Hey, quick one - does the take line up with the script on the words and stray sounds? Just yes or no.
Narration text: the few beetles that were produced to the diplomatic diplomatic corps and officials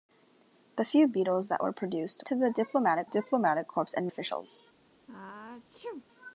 no